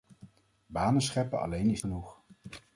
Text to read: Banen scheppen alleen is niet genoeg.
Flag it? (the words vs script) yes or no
yes